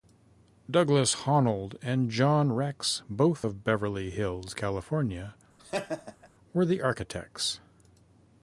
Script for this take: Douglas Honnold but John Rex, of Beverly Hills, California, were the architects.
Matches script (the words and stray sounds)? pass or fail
fail